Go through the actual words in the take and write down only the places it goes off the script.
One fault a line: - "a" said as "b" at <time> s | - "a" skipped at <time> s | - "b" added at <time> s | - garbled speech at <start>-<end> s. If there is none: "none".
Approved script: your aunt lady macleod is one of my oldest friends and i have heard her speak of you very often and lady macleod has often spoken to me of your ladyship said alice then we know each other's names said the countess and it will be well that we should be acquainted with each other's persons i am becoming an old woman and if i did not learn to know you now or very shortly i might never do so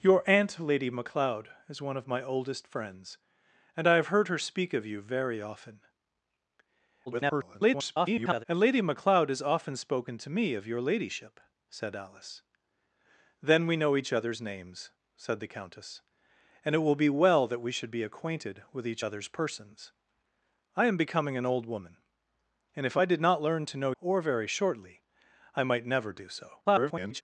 - garbled speech at 7.1-8.4 s
- "you now" skipped at 23.9 s
- garbled speech at 26.6-27.2 s